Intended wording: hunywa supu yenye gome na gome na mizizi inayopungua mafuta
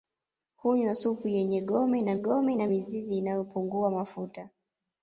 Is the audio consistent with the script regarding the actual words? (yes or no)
yes